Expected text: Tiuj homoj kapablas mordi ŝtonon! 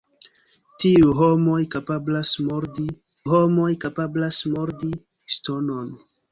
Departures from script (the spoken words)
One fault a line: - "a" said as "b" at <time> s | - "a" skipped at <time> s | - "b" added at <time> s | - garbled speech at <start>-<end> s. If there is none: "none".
- "homoj kapablas mordi" added at 3.3 s